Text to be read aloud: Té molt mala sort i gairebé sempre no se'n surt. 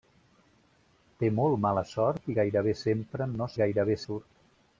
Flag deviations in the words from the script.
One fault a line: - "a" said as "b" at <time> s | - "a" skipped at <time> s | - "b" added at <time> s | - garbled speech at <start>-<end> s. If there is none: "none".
- "se'n" said as "gairebé" at 3.6 s